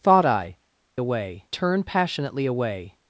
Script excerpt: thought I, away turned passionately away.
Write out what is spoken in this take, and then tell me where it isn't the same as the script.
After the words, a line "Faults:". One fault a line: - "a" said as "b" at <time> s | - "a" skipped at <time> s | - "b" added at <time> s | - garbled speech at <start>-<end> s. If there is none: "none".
thought I, away turned passionately away.
Faults:
none